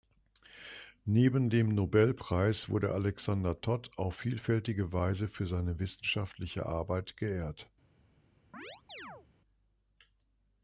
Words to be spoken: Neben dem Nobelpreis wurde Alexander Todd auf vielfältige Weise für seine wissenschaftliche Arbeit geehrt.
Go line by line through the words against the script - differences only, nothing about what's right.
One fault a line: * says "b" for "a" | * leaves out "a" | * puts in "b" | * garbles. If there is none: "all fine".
all fine